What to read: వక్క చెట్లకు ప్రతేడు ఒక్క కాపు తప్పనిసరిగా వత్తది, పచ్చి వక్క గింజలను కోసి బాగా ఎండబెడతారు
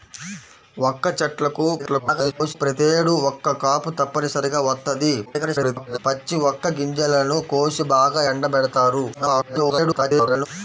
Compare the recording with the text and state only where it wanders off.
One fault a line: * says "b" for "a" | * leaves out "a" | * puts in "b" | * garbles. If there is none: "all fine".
* garbles
* garbles
* garbles